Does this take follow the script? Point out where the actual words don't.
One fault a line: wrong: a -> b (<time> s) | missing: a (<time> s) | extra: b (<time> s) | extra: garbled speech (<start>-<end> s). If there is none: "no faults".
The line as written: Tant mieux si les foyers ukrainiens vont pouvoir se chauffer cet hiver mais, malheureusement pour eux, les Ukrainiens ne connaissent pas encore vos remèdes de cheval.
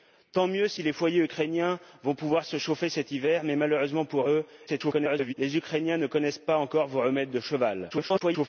extra: garbled speech (4.7-5.3 s)
extra: garbled speech (7.9-8.5 s)